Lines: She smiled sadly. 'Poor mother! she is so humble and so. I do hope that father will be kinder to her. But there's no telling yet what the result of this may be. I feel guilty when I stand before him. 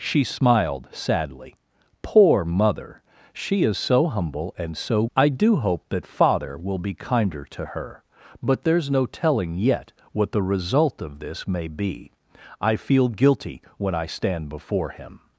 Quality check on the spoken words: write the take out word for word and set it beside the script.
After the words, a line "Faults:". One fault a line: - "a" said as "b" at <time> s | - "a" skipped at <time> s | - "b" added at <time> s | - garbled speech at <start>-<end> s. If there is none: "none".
She smiled sadly. 'Poor mother! she is so humble and so. I do hope that father will be kinder to her. But there's no telling yet what the result of this may be. I feel guilty when I stand before him.
Faults:
none